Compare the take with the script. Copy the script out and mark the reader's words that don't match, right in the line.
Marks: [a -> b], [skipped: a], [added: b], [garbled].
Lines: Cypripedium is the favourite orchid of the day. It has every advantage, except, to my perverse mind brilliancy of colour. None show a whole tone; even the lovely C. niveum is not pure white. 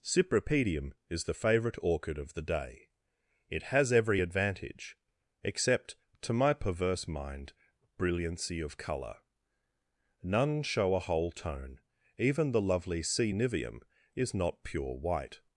Cypripedium is the favourite orchid of the day. It has every advantage, except, to my perverse mind brilliancy of colour. None show a whole tone; even the lovely C. niveum is not pure white.